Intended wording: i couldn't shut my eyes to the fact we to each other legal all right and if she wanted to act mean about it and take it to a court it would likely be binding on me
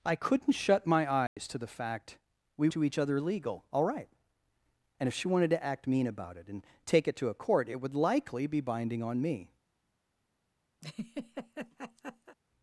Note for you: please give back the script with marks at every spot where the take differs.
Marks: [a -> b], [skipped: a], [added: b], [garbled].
i couldn't shut my eyes to the fact we to each other legal all right and if she wanted to act mean about it and take it to a court it would likely be binding on me